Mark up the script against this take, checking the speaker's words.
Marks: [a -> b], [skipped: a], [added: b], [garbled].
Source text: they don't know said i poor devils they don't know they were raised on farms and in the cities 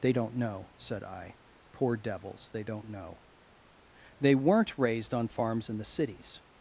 they don't know said i poor devils they don't know they [were -> weren't] raised on farms [skipped: and] in the cities